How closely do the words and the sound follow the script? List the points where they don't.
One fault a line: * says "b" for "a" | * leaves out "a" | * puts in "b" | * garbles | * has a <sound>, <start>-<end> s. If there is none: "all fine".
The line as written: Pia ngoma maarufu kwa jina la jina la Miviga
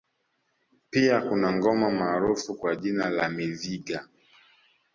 * puts in "kuna"
* leaves out "jina la"